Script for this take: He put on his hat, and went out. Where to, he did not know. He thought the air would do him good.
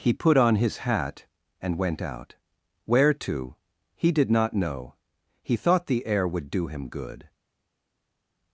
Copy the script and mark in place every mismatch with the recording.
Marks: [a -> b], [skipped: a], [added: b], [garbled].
He put on his hat, and went out. Where to, he did not know. He thought the air would do him good.